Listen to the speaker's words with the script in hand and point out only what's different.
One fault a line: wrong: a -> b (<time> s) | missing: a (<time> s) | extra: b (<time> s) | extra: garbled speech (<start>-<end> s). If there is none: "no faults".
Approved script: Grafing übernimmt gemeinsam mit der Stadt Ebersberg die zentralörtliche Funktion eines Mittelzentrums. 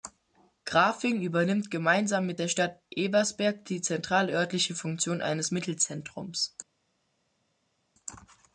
no faults